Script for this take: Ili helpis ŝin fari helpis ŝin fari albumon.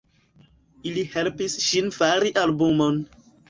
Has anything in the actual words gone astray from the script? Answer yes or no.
yes